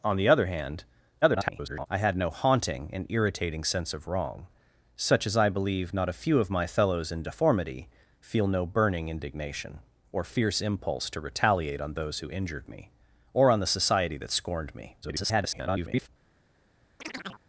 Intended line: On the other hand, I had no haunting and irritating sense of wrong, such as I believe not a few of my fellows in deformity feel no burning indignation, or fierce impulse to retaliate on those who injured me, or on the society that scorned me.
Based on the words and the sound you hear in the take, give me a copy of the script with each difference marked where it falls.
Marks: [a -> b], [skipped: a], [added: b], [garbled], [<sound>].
On the other hand, [garbled] I had no haunting and irritating sense of wrong, such as I believe not a few of my fellows in deformity feel no burning indignation, or fierce impulse to retaliate on those who injured me, or on the society that scorned me. [garbled] [chirp]